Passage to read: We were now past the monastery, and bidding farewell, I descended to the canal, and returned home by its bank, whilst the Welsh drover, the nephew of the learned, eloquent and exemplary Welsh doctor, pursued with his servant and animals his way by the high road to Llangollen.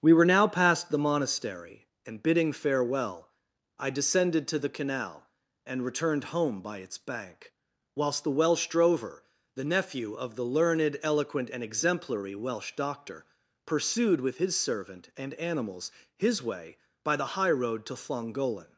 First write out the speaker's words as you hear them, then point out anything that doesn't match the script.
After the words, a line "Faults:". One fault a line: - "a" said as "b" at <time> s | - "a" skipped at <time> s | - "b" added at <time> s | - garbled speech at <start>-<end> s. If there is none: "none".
We were now past the monastery, and bidding farewell, I descended to the canal, and returned home by its bank, whilst the Welsh drover, the nephew of the learned, eloquent and exemplary Welsh doctor, pursued with his servant and animals his way by the high road to Llangollen.
Faults:
none